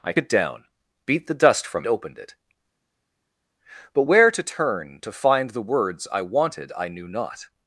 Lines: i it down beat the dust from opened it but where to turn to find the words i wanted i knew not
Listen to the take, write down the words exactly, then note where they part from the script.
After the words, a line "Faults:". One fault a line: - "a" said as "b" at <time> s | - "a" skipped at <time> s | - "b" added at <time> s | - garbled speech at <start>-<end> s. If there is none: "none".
i it down beat the dust from opened it but where to turn to find the words i wanted i knew not
Faults:
none